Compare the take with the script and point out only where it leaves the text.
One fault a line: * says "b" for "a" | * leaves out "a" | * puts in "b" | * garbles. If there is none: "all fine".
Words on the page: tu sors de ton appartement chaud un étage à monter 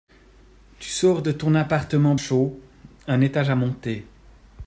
all fine